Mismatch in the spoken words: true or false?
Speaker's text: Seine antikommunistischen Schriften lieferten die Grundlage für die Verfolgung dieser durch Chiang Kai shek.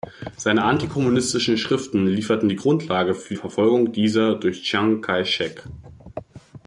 true